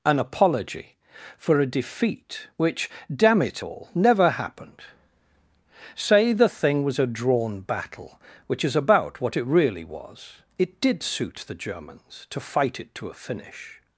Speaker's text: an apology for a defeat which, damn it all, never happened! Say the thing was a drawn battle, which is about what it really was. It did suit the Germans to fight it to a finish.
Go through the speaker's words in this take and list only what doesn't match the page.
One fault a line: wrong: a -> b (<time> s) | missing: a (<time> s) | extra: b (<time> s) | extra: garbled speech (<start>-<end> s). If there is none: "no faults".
no faults